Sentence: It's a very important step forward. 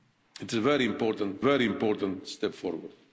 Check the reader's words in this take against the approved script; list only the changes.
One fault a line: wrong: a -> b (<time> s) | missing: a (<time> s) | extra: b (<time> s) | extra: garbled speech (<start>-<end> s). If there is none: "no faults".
extra: very important (1.4 s)